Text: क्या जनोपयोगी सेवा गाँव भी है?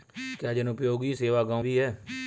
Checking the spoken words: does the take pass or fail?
pass